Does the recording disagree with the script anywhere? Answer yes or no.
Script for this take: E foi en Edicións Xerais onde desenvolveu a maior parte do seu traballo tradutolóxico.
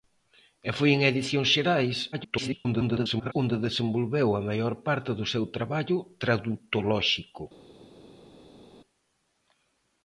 yes